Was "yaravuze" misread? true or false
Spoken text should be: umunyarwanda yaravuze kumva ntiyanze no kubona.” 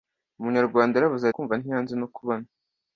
false